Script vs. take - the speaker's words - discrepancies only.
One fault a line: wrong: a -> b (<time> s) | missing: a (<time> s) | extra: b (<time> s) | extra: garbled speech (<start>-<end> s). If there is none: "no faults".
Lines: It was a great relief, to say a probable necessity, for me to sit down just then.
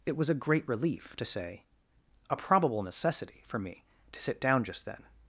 no faults